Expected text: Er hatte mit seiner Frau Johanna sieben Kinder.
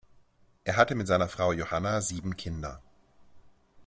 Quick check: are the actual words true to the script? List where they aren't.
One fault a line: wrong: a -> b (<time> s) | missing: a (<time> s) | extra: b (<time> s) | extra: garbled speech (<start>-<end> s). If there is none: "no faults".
no faults